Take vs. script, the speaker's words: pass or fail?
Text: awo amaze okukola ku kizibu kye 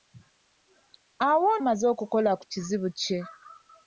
pass